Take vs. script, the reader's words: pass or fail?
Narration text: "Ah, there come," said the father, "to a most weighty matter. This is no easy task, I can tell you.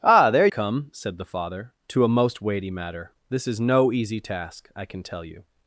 pass